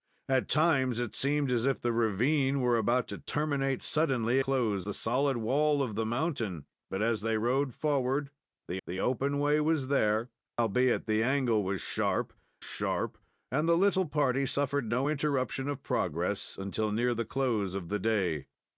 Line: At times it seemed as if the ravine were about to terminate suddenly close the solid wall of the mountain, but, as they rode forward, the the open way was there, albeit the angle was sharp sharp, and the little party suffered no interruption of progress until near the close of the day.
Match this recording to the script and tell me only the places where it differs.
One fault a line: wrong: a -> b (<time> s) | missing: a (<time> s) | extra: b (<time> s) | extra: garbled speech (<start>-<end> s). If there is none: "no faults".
no faults